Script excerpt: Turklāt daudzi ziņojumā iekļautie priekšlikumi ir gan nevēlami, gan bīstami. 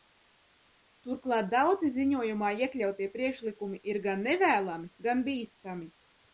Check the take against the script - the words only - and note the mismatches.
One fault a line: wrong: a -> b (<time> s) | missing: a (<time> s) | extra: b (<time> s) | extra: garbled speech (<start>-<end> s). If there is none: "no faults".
no faults